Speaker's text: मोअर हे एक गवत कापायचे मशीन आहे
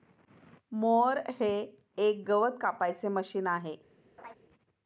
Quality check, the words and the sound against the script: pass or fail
fail